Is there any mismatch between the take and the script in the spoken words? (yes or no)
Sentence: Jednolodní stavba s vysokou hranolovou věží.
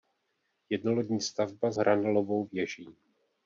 yes